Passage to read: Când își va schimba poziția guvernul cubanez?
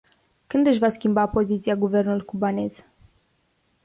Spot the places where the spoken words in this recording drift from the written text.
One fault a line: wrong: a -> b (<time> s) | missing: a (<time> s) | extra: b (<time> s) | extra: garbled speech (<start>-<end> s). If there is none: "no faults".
no faults